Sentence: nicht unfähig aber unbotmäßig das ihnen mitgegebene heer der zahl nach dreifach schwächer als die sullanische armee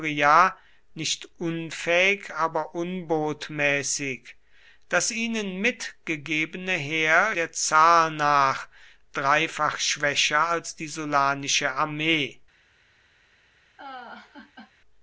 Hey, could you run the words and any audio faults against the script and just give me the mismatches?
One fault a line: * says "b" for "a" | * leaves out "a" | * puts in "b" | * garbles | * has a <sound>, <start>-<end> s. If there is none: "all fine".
* has a laugh, 13.8-14.7 s